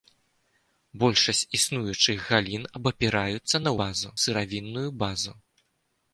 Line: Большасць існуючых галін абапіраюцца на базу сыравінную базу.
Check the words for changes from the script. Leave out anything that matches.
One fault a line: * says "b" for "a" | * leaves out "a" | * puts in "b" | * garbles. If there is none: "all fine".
all fine